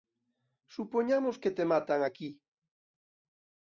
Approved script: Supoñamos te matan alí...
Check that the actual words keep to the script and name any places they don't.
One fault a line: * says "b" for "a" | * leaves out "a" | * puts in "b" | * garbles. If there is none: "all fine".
* puts in "que"
* says "aquí" for "alí"